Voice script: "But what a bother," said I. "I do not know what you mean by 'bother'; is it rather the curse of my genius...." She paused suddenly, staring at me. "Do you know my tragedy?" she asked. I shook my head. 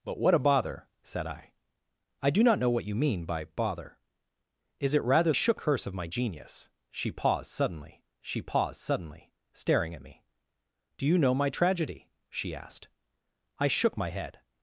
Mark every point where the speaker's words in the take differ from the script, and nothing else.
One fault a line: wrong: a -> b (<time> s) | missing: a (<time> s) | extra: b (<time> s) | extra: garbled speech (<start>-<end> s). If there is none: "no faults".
wrong: the -> shook (5.3 s)
extra: she paused suddenly (8.2 s)